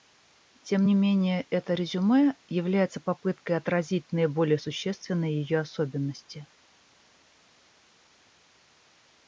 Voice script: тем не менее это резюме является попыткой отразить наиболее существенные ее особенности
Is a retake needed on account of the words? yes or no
no